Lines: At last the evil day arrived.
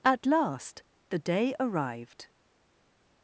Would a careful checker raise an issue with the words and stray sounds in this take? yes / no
yes